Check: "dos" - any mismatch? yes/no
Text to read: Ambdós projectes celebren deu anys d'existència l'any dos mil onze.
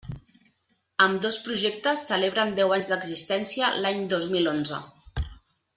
no